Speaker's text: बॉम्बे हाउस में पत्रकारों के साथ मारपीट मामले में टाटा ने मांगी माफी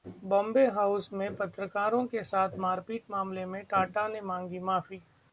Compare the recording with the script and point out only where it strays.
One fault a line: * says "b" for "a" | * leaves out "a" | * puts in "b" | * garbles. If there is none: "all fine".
all fine